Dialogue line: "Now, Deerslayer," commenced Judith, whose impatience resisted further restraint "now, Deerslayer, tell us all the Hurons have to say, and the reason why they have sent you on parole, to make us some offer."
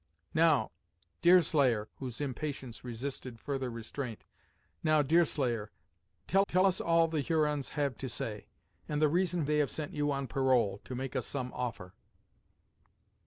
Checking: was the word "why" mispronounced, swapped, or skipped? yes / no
yes